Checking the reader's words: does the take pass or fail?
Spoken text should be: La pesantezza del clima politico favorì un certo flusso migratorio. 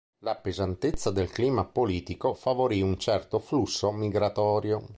pass